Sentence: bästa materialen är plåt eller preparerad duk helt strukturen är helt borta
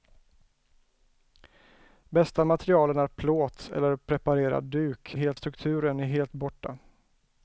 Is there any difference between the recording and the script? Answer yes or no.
no